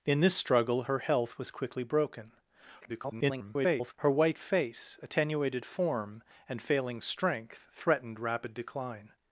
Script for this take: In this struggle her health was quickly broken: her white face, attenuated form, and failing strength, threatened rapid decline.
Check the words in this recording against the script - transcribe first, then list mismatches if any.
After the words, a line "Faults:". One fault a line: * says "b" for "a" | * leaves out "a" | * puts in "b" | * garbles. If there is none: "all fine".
In this struggle her health was quickly broken: [garbled] her white face, attenuated form, and failing strength, threatened rapid decline.
Faults:
* garbles